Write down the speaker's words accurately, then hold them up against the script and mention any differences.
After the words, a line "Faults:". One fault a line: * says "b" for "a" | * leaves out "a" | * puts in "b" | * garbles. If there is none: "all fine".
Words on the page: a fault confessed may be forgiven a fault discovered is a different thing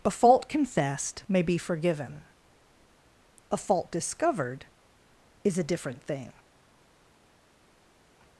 a fault confessed may be forgiven a fault discovered is a different thing
Faults:
all fine